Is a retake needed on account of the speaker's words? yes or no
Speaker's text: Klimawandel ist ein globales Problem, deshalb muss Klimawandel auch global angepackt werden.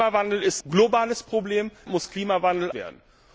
yes